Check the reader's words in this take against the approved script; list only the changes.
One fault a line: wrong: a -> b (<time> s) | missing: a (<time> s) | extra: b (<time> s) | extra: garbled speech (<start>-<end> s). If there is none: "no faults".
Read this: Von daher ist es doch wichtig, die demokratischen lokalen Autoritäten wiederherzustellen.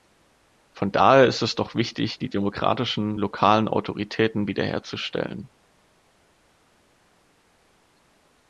no faults